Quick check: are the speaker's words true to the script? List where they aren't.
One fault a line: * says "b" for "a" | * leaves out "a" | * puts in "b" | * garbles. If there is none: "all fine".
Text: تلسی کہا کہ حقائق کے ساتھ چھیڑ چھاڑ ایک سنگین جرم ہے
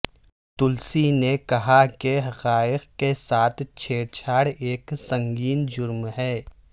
* puts in "نے"